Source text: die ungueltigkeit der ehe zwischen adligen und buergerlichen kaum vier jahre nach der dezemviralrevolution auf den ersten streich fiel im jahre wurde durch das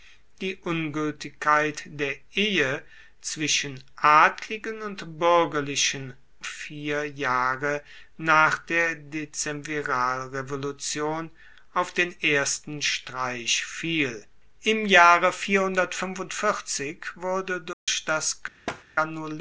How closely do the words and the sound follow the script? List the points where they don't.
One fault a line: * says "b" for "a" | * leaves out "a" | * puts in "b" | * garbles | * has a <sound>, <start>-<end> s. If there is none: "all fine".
* leaves out "kaum"
* has a dropout, 17.7-17.9 s
* has a thud, 18.7-18.8 s